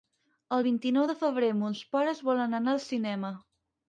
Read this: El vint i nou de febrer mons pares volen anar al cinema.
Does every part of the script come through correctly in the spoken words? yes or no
yes